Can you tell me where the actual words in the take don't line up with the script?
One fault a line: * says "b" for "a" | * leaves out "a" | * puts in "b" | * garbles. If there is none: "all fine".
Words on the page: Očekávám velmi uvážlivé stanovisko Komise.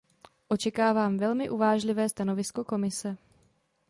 all fine